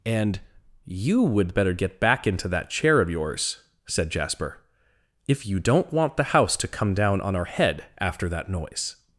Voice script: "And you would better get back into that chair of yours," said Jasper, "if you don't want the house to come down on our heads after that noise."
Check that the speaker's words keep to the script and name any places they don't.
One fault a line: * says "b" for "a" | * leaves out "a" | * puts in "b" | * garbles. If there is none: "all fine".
* says "head" for "heads"